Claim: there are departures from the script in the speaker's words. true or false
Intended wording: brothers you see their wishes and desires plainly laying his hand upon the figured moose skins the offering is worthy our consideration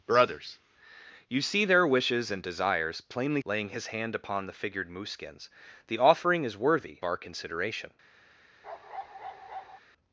false